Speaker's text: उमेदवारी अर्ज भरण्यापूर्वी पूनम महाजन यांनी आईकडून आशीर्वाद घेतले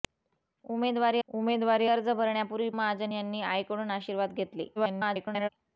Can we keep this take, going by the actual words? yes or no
no